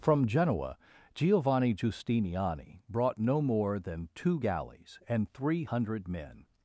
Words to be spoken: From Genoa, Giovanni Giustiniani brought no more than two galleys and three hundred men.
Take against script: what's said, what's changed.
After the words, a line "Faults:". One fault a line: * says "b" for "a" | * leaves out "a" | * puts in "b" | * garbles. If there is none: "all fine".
From Genoa, Giovanni Giustiniani brought no more than two galleys and three hundred men.
Faults:
all fine